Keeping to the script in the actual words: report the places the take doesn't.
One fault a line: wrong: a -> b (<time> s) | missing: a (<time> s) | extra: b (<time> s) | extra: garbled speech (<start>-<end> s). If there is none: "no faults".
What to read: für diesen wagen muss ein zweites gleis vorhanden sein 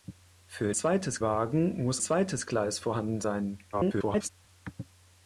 wrong: diesen -> zweites (0.7 s)
missing: ein (2.0 s)
extra: garbled speech (3.7-4.3 s)